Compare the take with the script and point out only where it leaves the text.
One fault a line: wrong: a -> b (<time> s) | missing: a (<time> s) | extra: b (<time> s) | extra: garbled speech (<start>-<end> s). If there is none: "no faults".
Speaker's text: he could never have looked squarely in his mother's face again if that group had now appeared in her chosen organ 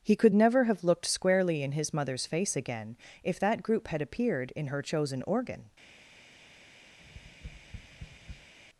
missing: now (4.0 s)